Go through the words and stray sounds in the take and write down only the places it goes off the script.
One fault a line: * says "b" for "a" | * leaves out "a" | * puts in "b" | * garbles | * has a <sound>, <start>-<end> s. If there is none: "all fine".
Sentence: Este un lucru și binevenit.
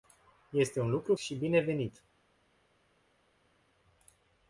all fine